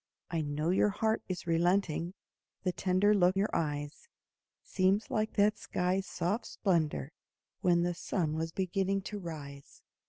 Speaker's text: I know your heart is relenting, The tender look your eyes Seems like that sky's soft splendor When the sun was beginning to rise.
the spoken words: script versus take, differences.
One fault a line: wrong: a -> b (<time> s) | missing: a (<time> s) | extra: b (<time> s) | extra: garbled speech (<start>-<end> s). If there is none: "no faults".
no faults